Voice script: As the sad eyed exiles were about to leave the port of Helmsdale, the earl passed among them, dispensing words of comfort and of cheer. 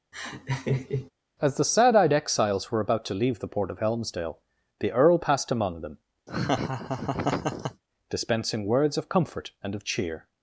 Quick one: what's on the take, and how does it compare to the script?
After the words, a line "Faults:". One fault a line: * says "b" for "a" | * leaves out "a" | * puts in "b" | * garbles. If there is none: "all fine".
As the sad eyed exiles were about to leave the port of Helmsdale, the earl passed among them, dispensing words of comfort and of cheer.
Faults:
all fine